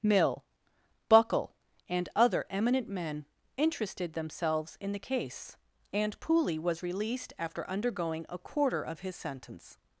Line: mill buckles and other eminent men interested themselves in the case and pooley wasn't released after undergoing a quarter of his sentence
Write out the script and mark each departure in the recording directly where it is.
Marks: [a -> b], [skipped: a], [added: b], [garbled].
mill [buckles -> buckle] and other eminent men interested themselves in the case and pooley [wasn't -> was] released after undergoing a quarter of his sentence